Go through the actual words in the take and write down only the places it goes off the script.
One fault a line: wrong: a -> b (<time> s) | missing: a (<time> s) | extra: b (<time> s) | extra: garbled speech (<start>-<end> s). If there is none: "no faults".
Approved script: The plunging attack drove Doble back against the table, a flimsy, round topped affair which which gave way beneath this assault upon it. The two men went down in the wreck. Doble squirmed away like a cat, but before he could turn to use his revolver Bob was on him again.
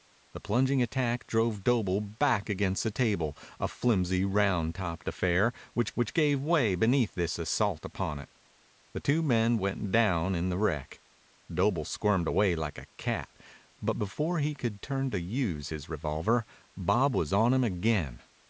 no faults